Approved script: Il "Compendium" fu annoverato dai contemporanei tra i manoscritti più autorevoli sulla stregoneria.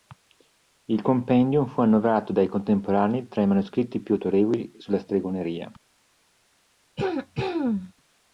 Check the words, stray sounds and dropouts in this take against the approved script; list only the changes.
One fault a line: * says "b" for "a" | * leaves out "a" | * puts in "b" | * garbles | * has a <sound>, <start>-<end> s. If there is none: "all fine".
* has a throat clearing, 7.0-7.9 s